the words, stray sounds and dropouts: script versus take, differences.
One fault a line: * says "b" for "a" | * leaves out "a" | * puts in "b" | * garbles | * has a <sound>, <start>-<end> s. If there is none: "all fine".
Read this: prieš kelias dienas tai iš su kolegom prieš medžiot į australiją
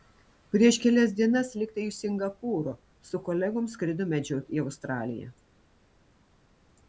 * puts in "lyg"
* puts in "singapūro"
* says "skrido" for "prieš"